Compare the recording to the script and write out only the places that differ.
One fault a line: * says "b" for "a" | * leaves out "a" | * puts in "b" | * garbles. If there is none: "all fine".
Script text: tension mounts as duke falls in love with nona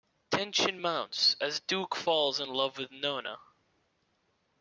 all fine